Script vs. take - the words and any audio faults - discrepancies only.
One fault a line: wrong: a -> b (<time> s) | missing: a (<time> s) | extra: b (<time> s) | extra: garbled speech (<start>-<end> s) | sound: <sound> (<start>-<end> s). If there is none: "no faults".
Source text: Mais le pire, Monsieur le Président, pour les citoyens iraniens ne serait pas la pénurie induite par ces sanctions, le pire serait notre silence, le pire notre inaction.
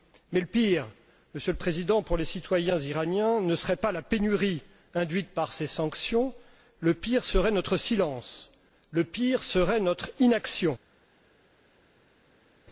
extra: serait (9.4 s)